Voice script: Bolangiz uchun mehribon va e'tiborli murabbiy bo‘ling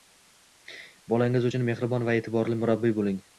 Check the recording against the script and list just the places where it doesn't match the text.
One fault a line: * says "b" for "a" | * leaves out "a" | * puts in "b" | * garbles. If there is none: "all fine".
all fine